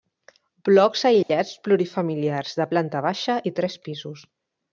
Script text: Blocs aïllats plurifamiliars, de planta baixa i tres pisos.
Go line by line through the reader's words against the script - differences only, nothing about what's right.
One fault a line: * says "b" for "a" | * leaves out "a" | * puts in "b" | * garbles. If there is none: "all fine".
all fine